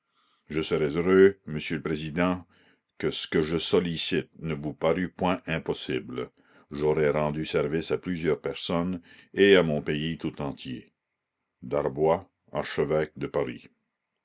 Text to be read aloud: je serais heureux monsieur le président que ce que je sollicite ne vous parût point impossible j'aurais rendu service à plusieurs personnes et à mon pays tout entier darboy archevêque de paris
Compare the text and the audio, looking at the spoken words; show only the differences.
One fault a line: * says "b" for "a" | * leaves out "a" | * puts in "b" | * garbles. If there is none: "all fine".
all fine